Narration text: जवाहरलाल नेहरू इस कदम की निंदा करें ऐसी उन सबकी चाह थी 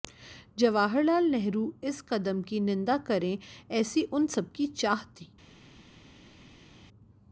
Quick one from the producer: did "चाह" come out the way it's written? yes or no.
yes